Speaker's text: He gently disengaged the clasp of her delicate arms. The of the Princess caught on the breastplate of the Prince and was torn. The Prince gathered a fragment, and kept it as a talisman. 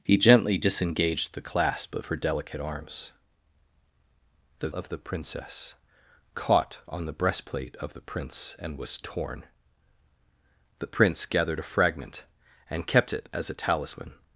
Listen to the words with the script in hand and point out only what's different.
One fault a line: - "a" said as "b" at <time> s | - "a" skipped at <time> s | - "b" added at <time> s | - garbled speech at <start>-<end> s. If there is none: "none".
none